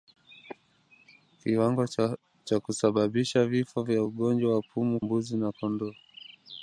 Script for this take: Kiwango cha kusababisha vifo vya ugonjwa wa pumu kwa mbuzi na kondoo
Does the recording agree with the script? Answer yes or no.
no